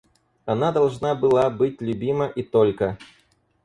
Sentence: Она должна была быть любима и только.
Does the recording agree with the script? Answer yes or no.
yes